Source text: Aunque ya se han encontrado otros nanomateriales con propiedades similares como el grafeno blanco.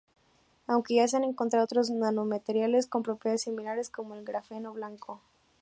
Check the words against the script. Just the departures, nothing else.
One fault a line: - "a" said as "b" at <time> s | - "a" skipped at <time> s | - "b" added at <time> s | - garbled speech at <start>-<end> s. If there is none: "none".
none